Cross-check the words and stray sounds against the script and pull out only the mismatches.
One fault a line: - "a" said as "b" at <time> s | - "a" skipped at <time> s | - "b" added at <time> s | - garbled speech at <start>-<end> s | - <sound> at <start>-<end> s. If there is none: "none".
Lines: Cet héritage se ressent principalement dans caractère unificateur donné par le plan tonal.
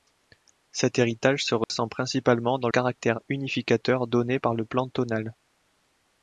- dropout at 1.6-1.7 s